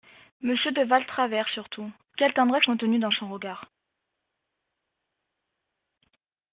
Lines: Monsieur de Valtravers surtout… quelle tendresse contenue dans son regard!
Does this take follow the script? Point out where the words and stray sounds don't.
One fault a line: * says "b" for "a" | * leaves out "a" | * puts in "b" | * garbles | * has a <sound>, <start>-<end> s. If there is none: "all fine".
all fine